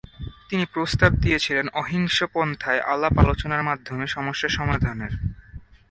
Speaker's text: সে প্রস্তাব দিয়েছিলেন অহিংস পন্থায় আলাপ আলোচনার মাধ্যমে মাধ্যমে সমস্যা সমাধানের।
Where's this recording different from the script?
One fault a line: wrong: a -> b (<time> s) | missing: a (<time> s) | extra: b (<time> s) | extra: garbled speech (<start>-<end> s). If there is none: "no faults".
wrong: সে -> তিনি (0.5 s)
missing: মাধ্যমে (4.0 s)